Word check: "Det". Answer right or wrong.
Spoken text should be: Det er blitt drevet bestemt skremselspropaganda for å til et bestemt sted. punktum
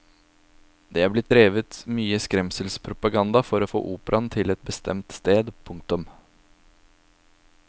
right